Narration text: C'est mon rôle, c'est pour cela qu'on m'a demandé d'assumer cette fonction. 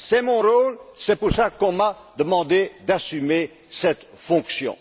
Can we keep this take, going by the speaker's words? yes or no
yes